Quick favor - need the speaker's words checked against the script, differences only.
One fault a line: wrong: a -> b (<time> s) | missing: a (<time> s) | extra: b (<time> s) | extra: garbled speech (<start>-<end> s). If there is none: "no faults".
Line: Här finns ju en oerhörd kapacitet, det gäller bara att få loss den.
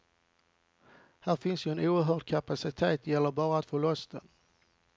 no faults